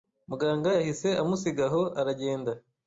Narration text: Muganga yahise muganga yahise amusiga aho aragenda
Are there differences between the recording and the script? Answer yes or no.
yes